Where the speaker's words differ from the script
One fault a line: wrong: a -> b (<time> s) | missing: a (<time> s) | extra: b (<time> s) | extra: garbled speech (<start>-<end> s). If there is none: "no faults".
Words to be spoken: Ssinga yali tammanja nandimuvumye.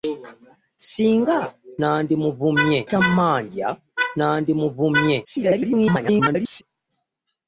wrong: yali -> nandimuvumye (1.8 s)
extra: garbled speech (5.2-6.6 s)